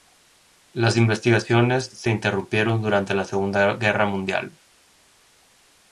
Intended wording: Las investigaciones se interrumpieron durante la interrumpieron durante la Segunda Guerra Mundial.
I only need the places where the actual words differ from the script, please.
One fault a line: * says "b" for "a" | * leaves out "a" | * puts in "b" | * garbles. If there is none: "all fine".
* leaves out "interrumpieron durante la"